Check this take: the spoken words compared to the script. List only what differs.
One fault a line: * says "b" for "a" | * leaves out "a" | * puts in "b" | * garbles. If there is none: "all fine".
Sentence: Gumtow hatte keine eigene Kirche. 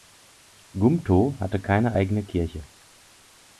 all fine